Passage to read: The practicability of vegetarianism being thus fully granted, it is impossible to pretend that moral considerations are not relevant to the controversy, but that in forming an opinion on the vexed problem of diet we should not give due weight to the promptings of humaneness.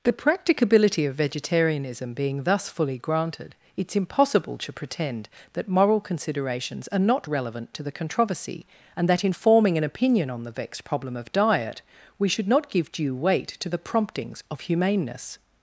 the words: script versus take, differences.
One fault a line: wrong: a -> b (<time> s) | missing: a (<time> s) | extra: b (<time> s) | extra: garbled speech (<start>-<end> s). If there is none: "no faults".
wrong: but -> and (8.9 s)